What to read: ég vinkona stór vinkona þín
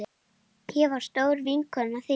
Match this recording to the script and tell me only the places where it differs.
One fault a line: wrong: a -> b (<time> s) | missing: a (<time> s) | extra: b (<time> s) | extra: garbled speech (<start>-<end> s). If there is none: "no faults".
wrong: vinkona -> var (0.9 s)